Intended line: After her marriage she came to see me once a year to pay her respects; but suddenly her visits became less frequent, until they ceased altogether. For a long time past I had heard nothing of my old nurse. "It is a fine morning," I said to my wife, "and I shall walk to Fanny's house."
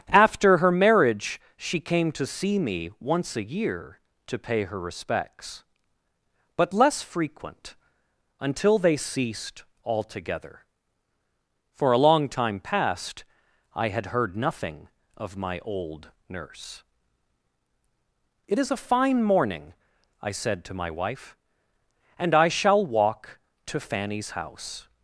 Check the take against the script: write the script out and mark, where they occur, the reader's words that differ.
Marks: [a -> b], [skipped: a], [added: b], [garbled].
After her marriage she came to see me once a year to pay her respects; but [skipped: suddenly her visits became] less frequent, until they ceased altogether. For a long time past I had heard nothing of my old nurse. "It is a fine morning," I said to my wife, "and I shall walk to Fanny's house."